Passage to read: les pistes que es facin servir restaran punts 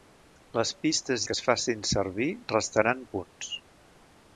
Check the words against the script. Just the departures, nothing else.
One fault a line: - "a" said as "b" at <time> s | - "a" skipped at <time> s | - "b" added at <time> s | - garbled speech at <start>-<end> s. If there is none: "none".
none